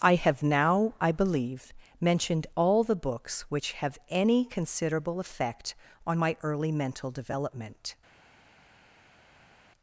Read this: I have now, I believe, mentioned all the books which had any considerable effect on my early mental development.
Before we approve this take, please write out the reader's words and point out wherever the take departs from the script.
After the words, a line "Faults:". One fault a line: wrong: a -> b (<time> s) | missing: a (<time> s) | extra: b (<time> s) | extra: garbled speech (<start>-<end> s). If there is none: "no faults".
I have now, I believe, mentioned all the books which have any considerable effect on my early mental development.
Faults:
wrong: had -> have (3.7 s)